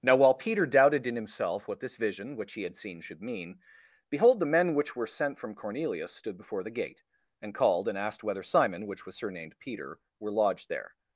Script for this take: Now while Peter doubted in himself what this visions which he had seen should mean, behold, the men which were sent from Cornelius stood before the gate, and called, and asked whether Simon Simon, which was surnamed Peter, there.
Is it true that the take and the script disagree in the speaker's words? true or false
true